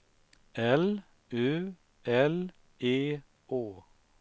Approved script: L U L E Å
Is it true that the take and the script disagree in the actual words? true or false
false